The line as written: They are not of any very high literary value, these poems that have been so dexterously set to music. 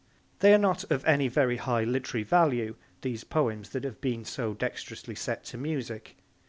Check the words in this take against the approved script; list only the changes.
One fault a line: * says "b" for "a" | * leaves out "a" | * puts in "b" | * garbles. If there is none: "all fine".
all fine